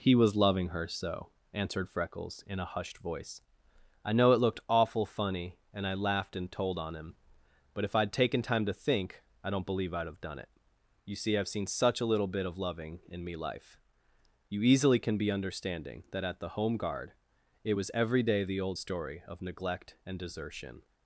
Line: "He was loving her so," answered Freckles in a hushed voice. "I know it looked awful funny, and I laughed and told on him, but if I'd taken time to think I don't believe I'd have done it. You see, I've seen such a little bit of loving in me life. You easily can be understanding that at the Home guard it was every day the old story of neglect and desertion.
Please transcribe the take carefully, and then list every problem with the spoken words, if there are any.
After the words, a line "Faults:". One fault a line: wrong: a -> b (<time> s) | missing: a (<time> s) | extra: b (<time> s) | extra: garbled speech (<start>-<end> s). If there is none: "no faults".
"He was loving her so," answered Freckles in a hushed voice. "I know it looked awful funny, and I laughed and told on him, but if I'd taken time to think I don't believe I'd have done it. You see, I've seen such a little bit of loving in me life. You easily can be understanding that at the Home guard it was every day the old story of neglect and desertion.
Faults:
no faults